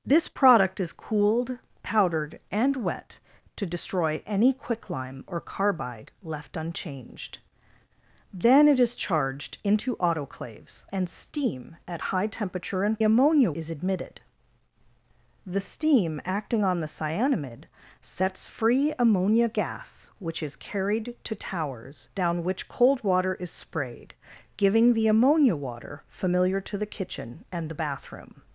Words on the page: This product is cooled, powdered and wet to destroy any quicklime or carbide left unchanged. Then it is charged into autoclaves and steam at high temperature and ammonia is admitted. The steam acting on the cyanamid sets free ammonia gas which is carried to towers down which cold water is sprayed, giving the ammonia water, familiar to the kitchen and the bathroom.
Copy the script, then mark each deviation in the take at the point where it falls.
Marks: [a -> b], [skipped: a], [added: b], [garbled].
This product is cooled, powdered and wet to destroy any quicklime or carbide left unchanged. Then it is charged into autoclaves and steam at high temperature and ammonia is admitted. The steam acting on the cyanamid sets free ammonia gas which is carried to towers down which cold water is sprayed, giving the ammonia water, familiar to the kitchen and the bathroom.